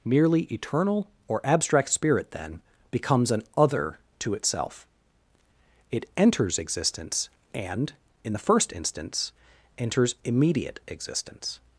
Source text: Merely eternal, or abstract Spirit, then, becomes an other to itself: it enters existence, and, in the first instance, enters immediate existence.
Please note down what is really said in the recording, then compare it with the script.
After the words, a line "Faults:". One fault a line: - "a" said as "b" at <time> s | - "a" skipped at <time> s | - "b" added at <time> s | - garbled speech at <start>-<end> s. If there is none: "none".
Merely eternal, or abstract Spirit, then, becomes an other to itself: it enters existence, and, in the first instance, enters immediate existence.
Faults:
none